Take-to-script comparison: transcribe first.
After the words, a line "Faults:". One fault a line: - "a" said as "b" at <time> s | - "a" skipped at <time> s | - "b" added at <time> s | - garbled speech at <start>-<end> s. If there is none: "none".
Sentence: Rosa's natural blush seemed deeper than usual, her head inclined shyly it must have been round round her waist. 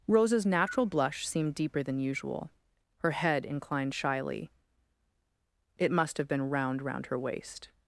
Rosa's natural blush seemed deeper than usual, her head inclined shyly it must have been round round her waist.
Faults:
none